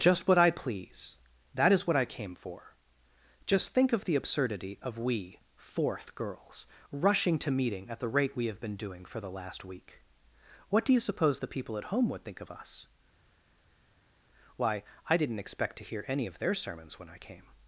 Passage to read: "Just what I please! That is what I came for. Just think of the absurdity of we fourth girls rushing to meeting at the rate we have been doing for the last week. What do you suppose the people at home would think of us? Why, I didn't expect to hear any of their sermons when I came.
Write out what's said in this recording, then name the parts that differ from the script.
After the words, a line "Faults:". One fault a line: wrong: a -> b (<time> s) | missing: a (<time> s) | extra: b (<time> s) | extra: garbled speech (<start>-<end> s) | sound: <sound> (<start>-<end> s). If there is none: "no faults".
"Just what I please! That is what I came for. Just think of the absurdity of we fourth girls rushing to meeting at the rate we have been doing for the last week. What do you suppose the people at home would think of us? Why, I didn't expect to hear any of their sermons when I came.
Faults:
no faults